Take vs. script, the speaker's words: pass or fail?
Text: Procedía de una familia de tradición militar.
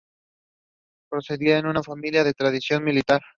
pass